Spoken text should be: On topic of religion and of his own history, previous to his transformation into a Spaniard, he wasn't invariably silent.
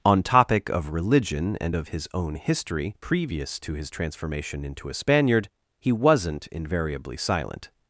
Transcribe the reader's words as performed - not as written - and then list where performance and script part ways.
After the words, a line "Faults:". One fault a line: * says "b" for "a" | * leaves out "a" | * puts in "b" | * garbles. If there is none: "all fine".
On topic of religion and of his own history, previous to his transformation into a Spaniard, he wasn't invariably silent.
Faults:
all fine